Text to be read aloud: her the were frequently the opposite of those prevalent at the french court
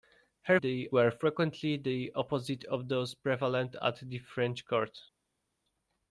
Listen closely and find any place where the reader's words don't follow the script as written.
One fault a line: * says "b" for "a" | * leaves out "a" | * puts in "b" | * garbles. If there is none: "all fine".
all fine